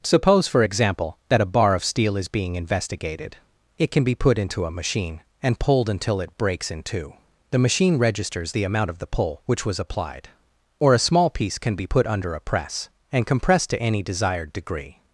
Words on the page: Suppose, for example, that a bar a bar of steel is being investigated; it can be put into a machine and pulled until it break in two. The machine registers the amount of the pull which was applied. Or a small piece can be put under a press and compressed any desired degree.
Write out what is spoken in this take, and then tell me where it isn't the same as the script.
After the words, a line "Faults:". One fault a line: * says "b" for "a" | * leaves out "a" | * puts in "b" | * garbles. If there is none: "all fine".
Suppose, for example, that a bar of steel is being investigated; it can be put into a machine and pulled until it breaks in two. The machine registers the amount of the pull which was applied. Or a small piece can be put under a press and compressed to any desired degree.
Faults:
* leaves out "a bar"
* says "breaks" for "break"
* puts in "to"